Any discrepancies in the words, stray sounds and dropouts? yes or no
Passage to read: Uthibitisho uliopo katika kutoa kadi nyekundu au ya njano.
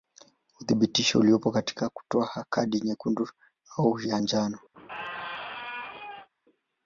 yes